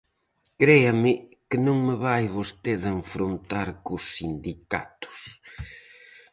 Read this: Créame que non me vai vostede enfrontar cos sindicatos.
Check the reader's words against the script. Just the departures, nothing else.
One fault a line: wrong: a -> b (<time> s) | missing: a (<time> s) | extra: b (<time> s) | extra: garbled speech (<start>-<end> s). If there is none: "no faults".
no faults